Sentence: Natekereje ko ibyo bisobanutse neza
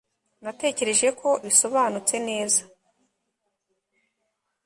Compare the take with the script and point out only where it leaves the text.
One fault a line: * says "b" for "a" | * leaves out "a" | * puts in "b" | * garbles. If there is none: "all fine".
* leaves out "ibyo"